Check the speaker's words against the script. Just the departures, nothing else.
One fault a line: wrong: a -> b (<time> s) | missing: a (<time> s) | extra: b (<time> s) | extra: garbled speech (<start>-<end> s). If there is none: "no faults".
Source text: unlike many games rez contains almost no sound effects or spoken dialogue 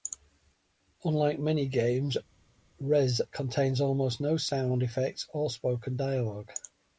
no faults